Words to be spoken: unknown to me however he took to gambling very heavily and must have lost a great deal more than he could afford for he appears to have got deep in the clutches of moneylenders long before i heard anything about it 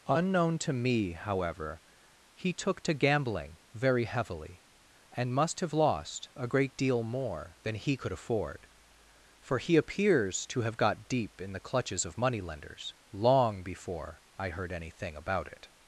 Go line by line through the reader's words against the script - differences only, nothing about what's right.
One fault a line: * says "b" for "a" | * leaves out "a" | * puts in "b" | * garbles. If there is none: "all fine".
all fine